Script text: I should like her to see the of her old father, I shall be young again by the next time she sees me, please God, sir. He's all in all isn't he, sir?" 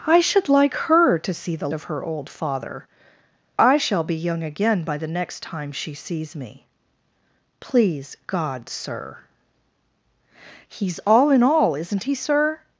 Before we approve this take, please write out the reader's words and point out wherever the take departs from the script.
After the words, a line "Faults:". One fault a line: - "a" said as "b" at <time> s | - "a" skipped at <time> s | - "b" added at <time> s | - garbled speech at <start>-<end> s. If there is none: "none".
I should like her to see the of her old father, I shall be young again by the next time she sees me, please God, sir. He's all in all isn't he, sir?"
Faults:
none